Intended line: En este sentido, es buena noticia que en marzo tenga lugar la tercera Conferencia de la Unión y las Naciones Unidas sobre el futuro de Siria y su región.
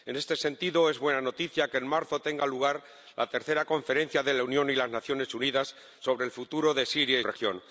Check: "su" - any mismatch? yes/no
yes